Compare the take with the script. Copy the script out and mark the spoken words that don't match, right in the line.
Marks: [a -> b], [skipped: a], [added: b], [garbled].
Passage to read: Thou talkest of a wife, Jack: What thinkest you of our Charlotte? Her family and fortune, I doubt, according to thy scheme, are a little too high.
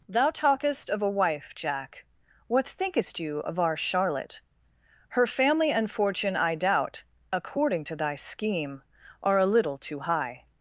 Thou talkest of a wife, Jack: What thinkest you of our Charlotte? Her family and fortune, I doubt, according to thy scheme, are a little too high.